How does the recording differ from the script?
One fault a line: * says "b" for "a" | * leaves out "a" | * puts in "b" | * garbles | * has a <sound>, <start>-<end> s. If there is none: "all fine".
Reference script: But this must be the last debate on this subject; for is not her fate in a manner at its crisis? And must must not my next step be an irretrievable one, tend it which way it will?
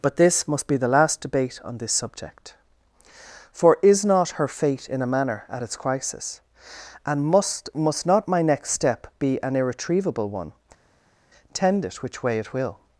all fine